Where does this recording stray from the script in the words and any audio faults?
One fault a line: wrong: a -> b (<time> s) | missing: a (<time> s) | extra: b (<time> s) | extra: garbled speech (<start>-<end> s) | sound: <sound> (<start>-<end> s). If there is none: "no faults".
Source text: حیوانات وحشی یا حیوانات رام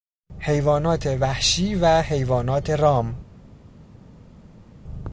wrong: یا -> و (1.8 s)